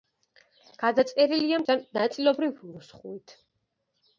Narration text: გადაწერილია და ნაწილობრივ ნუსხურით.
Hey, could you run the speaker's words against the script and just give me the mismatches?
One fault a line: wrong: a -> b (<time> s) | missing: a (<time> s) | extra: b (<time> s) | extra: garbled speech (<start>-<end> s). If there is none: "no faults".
no faults